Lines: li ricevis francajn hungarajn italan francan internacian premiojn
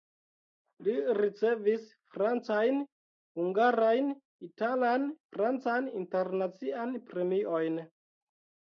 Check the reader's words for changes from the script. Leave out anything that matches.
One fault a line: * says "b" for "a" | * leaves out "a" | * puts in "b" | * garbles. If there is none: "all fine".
all fine